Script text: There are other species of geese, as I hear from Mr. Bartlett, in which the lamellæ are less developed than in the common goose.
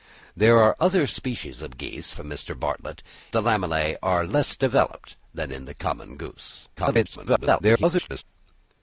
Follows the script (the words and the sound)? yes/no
no